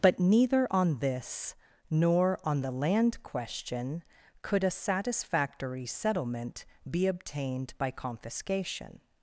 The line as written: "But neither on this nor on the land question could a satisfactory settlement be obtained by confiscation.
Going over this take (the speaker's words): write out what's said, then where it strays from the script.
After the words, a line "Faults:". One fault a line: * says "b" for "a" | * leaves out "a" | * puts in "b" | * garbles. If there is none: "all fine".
"But neither on this nor on the land question could a satisfactory settlement be obtained by confiscation.
Faults:
all fine